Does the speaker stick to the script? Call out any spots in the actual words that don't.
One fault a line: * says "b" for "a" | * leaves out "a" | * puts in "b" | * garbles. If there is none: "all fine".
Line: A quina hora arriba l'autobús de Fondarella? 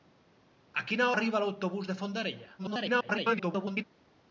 * leaves out "hora"
* garbles